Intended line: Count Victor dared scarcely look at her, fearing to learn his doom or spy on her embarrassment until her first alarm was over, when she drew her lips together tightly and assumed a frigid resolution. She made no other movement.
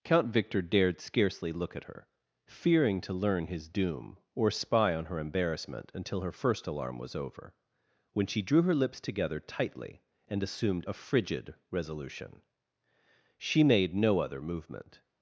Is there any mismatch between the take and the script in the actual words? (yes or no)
no